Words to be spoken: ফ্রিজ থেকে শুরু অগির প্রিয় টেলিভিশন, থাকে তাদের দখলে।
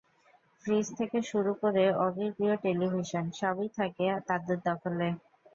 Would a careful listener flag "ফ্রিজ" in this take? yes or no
no